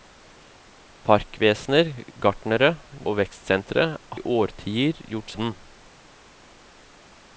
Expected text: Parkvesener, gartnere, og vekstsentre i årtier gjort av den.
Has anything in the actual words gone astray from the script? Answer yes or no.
no